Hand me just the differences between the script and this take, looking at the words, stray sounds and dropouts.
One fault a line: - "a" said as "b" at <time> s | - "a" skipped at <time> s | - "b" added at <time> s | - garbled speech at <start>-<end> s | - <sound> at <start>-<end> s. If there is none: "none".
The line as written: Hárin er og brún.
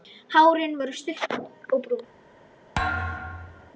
- "stutt" added at 0.9 s
- thud at 2.7-3.7 s